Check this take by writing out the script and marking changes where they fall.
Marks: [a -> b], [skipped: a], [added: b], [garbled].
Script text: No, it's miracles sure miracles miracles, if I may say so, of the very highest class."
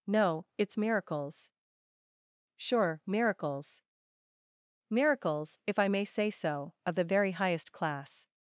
No, it's miracles sure miracles miracles, if I may say so, of the very highest class."